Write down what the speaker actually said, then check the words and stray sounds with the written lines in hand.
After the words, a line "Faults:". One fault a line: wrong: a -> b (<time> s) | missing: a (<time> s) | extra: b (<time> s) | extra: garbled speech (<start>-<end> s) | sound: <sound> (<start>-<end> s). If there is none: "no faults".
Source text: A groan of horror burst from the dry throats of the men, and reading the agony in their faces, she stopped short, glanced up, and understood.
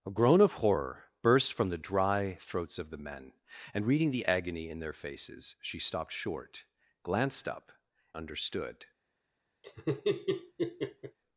A groan of horror burst from the dry throats of the men, and reading the agony in their faces, she stopped short, glanced up, understood.
Faults:
missing: and (7.7 s)
sound: laugh (9.6-11.2 s)